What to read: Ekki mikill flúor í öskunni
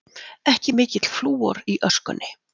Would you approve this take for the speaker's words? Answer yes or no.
yes